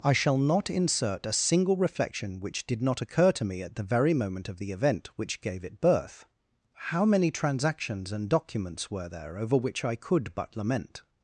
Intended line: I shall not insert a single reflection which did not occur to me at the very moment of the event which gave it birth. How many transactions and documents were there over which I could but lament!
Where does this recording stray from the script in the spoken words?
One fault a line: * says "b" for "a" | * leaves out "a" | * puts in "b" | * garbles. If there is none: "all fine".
all fine